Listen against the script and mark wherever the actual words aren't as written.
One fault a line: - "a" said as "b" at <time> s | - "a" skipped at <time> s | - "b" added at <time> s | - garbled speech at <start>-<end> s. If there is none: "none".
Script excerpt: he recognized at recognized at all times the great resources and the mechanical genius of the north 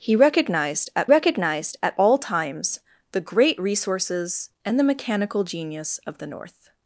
none